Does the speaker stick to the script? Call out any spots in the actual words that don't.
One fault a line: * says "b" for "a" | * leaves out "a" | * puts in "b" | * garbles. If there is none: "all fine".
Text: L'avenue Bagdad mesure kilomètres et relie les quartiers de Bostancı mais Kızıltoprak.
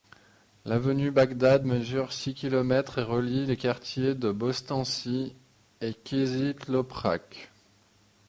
* puts in "six"
* says "et" for "mais"